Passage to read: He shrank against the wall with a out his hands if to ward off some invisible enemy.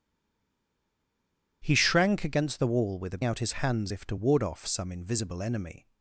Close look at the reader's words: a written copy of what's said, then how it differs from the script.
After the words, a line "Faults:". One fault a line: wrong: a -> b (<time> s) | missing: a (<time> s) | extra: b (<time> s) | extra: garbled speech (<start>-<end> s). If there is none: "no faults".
He shrank against the wall with a out his hands if to ward off some invisible enemy.
Faults:
no faults